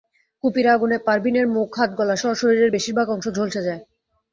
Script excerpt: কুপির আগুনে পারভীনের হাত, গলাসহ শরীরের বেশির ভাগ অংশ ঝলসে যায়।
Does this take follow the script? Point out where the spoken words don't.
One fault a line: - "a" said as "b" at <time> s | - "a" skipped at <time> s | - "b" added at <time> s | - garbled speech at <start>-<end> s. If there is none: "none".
- "মুখ" added at 1.5 s